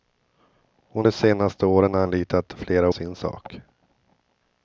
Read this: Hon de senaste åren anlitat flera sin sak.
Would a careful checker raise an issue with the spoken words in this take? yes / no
no